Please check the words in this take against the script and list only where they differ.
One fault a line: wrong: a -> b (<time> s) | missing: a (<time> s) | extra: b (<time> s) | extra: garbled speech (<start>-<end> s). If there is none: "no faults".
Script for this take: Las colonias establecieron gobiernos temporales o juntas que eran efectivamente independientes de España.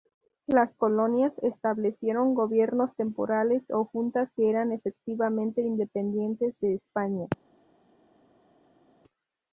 no faults